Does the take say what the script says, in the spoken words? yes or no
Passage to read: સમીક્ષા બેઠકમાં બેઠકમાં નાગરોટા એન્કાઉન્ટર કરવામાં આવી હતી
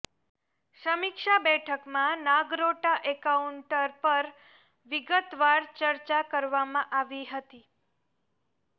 no